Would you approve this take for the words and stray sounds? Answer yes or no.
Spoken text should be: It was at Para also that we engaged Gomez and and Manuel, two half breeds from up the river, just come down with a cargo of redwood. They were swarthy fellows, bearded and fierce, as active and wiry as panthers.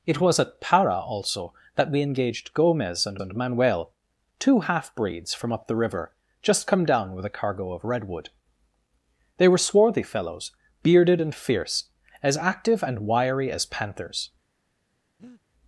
no